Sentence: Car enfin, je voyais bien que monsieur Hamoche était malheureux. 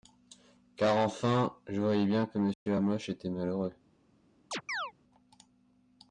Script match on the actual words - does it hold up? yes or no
yes